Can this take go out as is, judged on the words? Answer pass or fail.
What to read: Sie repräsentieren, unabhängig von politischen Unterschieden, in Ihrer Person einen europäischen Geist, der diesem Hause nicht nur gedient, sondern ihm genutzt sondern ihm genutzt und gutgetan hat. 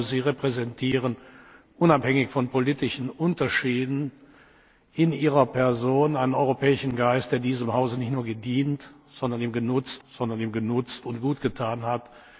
pass